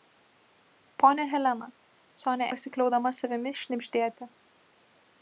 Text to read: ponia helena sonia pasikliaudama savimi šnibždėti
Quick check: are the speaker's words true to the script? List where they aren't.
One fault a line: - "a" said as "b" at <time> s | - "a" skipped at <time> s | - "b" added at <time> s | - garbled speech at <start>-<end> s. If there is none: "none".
none